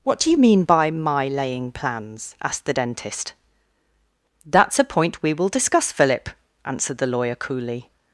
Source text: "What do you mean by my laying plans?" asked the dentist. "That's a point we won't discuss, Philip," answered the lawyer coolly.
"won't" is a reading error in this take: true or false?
true